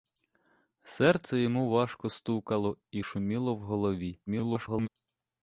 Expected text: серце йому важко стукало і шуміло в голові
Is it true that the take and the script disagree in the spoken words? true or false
true